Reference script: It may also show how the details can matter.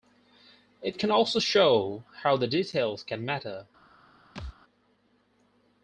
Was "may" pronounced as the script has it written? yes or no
no